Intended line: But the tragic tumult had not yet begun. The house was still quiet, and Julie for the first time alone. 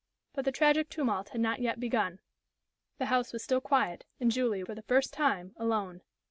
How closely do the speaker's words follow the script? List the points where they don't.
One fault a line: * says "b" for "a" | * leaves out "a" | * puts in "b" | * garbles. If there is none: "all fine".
all fine